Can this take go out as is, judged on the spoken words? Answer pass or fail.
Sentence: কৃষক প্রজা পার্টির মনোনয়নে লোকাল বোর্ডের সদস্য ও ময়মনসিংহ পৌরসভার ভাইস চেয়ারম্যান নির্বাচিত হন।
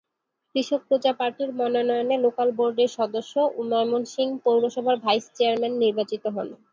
pass